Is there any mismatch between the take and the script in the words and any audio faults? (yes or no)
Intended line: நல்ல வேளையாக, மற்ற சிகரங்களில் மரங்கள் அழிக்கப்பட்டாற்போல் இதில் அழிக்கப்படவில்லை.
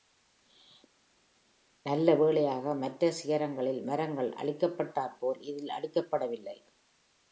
no